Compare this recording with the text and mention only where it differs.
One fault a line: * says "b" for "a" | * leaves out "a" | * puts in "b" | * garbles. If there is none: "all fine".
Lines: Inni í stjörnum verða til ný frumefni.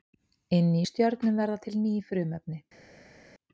all fine